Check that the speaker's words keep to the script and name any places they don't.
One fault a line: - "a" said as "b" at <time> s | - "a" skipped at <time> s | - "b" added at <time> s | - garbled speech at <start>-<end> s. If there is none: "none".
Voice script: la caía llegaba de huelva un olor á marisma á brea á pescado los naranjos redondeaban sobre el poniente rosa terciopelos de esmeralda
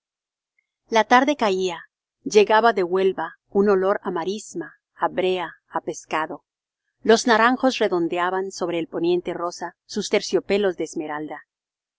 - "tarde" added at 1.0 s
- "sus" added at 9.9 s